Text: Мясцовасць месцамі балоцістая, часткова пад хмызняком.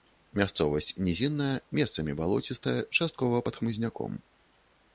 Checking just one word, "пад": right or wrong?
right